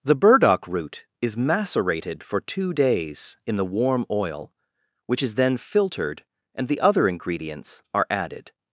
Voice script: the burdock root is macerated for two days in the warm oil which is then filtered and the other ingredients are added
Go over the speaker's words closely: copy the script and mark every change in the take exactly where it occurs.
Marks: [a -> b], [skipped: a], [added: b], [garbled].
the burdock root is macerated for two days in the warm oil which is then filtered and the other ingredients are added